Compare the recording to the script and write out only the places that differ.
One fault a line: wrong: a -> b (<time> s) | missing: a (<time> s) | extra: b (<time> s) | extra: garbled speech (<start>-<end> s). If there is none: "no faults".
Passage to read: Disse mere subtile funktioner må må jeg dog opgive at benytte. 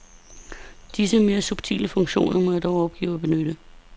missing: må (2.5 s)